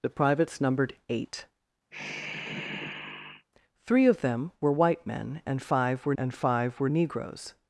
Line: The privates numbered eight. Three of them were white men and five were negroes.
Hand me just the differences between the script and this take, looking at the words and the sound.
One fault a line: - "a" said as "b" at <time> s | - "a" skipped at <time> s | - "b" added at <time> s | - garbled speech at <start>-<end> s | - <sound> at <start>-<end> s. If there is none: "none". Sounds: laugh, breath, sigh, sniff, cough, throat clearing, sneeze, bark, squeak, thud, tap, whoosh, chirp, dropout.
- sigh at 1.9-3.5 s
- "and five were" added at 6.2 s